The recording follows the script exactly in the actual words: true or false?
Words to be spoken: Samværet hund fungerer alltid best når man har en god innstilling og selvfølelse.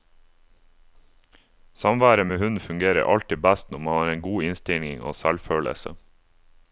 false